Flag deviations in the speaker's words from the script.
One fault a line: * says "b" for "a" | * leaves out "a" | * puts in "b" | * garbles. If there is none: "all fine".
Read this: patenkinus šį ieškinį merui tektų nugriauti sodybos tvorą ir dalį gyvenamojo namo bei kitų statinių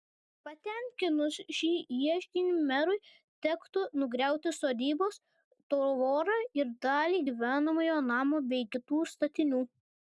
all fine